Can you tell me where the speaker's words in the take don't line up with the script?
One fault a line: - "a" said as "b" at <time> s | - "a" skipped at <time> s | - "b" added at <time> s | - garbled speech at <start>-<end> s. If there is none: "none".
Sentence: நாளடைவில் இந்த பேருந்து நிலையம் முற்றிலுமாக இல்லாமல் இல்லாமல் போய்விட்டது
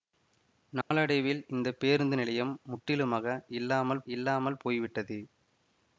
none